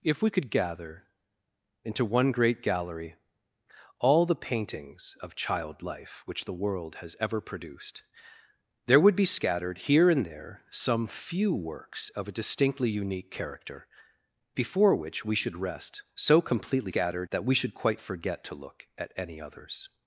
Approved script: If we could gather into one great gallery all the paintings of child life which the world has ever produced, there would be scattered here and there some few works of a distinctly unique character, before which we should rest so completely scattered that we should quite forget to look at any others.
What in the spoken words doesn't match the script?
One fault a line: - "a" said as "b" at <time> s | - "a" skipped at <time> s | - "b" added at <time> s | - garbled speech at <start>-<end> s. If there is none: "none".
none